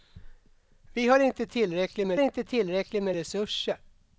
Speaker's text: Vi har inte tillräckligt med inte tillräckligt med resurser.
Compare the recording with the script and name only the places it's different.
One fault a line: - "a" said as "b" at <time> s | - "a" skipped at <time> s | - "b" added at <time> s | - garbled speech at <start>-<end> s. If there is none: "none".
none